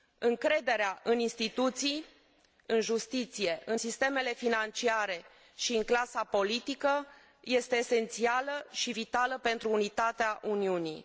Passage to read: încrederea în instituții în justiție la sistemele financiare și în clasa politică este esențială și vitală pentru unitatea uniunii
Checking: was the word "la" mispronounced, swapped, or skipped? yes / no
yes